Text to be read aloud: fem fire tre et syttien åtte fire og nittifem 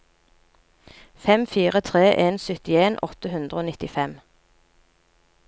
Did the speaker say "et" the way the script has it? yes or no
no